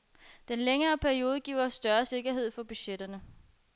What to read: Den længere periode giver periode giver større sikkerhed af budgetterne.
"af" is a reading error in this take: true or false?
true